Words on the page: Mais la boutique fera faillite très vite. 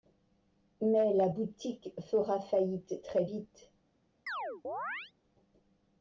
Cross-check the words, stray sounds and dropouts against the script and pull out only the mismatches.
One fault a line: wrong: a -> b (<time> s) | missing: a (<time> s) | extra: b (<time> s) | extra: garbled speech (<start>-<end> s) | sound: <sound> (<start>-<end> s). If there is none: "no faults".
sound: chirp (4.3-5.1 s)